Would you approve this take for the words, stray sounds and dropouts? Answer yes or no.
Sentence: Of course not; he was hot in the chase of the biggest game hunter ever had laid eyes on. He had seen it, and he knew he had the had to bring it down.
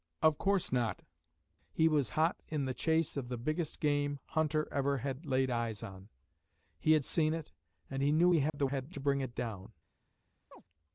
no